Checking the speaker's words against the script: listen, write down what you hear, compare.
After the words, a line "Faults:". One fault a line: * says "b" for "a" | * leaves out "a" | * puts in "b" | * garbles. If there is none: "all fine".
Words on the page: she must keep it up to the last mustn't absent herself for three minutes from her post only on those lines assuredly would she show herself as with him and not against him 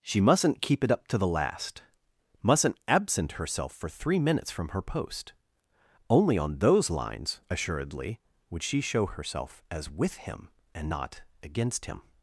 she mustn't keep it up to the last mustn't absent herself for three minutes from her post only on those lines assuredly would she show herself as with him and not against him
Faults:
* says "mustn't" for "must"